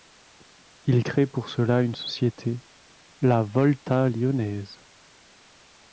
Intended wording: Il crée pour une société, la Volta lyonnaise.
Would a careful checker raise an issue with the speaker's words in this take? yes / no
yes